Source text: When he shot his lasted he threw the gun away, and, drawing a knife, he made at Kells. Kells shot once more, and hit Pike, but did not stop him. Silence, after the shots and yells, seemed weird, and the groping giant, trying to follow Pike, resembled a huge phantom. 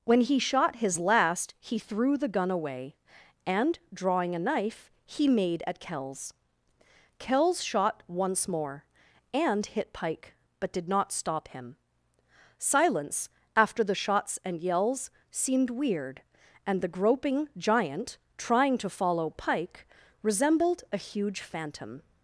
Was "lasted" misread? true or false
true